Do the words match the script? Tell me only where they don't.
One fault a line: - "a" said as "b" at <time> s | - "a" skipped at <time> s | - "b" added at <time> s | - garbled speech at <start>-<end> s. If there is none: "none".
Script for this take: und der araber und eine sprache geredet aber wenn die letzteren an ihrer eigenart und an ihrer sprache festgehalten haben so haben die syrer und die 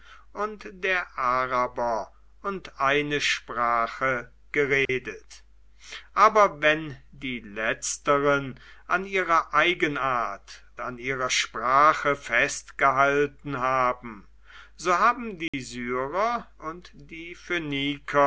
- "und" skipped at 10.6 s